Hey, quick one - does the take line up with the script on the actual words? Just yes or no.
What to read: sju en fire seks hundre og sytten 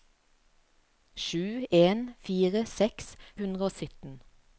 yes